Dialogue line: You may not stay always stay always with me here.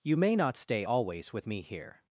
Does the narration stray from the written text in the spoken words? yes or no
yes